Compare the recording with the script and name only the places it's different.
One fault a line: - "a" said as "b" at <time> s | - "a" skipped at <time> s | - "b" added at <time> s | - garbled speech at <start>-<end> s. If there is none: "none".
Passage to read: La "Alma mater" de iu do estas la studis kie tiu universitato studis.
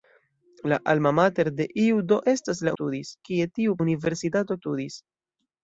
none